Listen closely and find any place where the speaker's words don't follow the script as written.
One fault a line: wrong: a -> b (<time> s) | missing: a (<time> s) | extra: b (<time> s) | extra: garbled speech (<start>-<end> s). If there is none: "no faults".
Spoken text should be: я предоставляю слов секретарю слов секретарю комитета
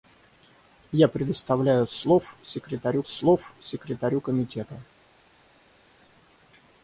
no faults